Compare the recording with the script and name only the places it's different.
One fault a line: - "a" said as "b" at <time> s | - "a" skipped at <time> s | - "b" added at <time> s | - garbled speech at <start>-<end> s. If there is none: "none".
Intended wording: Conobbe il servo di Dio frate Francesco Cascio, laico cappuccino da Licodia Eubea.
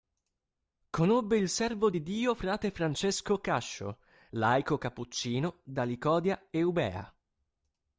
none